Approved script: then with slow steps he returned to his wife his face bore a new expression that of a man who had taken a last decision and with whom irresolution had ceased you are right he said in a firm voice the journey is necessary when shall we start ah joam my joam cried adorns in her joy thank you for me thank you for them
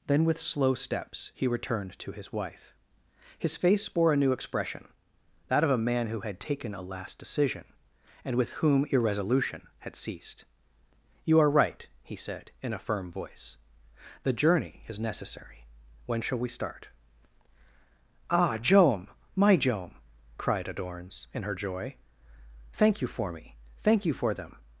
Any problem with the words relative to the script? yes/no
no